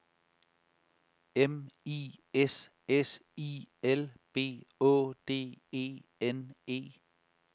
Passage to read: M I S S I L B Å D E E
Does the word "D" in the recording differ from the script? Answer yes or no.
no